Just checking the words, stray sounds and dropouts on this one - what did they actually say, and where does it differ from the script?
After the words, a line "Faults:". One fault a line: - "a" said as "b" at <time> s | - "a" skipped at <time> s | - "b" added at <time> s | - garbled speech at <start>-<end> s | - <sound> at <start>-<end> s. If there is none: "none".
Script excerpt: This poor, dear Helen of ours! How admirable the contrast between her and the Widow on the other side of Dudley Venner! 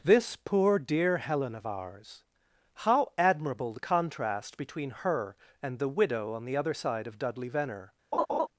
This poor, dear Helen of ours! How admirable the contrast between her and the Widow on the other side of Dudley Venner!
Faults:
- laugh at 8.1-8.5 s